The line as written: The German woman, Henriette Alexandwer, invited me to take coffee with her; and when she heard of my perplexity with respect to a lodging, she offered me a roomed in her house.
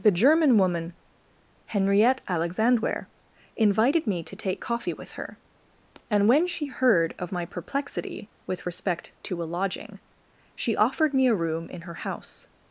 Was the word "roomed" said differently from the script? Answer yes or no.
yes